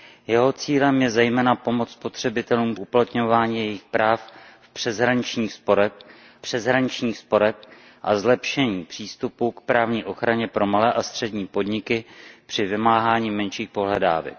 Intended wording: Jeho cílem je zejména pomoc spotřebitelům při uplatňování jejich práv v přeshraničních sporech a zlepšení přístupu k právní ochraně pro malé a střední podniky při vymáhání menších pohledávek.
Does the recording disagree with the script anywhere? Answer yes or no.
yes